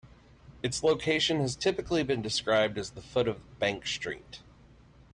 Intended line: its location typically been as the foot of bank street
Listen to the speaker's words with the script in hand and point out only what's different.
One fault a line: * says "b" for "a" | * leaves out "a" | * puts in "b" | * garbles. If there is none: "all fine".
* puts in "has"
* puts in "described"